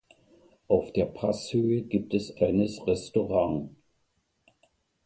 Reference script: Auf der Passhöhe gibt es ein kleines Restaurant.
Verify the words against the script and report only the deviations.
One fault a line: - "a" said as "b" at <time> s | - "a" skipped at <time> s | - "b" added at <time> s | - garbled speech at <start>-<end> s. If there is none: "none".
- "ein" skipped at 2.4 s